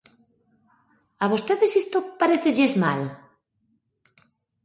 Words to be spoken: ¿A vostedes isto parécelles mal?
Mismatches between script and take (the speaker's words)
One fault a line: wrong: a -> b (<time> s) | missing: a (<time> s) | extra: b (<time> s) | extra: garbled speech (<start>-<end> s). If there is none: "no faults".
no faults